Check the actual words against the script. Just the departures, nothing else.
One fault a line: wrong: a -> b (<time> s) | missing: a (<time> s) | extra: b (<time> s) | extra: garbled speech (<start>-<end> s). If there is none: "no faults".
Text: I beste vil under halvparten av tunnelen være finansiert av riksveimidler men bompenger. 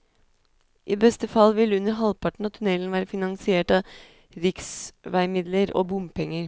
extra: fall (1.3 s)
wrong: men -> og (5.7 s)